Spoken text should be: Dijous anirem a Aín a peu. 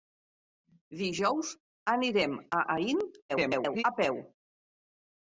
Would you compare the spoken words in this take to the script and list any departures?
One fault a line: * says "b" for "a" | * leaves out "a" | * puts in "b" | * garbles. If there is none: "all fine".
* garbles